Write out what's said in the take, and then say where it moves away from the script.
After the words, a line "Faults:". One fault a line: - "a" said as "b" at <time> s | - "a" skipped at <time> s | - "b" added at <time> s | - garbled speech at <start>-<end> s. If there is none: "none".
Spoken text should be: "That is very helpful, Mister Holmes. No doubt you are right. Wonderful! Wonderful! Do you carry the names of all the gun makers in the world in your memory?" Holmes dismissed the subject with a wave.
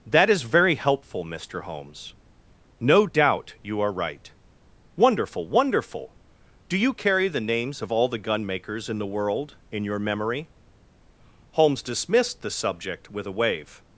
"That is very helpful, Mister Holmes. No doubt you are right. Wonderful! Wonderful! Do you carry the names of all the gun makers in the world in your memory?" Holmes dismissed the subject with a wave.
Faults:
none